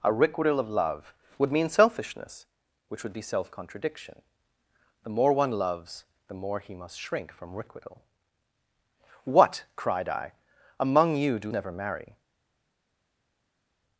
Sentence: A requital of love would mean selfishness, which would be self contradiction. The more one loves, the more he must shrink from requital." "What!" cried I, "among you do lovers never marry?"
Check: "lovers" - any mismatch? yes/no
yes